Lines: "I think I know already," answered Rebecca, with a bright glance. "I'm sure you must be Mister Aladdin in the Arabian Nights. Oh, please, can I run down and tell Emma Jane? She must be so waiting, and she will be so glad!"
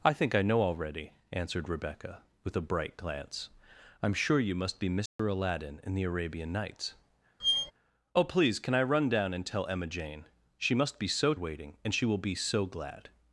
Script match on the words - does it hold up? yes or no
yes